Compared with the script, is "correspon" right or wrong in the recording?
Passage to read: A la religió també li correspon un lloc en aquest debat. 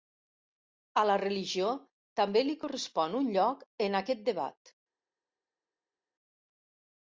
right